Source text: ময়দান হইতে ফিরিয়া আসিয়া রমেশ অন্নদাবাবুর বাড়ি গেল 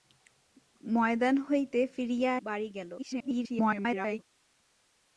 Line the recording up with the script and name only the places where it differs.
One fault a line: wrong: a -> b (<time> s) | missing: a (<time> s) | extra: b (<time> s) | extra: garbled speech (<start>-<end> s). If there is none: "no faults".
missing: আসিয়া রমেশ অন্নদাবাবুর (2.3 s)
extra: garbled speech (3.0-4.2 s)